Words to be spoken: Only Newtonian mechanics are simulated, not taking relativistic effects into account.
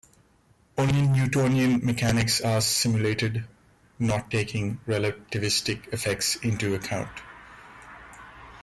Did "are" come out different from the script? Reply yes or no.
no